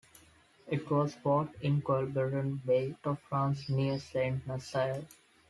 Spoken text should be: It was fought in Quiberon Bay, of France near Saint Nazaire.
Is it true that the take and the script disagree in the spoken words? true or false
false